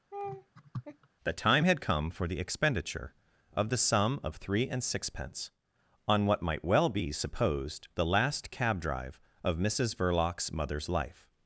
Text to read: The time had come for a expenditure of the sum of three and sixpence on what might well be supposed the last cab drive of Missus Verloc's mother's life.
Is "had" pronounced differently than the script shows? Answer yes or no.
no